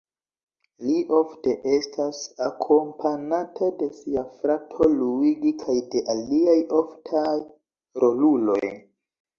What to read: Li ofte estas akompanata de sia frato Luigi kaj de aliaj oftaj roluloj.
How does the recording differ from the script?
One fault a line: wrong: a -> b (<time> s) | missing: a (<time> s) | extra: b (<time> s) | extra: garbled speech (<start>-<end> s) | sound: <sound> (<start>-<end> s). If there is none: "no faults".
no faults